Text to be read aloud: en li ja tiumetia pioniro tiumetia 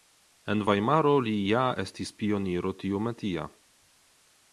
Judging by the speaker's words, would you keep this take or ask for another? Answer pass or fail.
fail